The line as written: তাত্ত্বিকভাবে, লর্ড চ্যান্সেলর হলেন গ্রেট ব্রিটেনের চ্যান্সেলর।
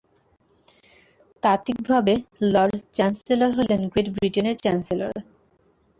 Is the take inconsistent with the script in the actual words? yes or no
no